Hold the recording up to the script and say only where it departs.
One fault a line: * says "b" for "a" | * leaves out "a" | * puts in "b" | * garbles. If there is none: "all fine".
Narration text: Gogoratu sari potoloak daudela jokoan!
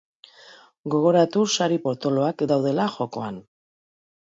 all fine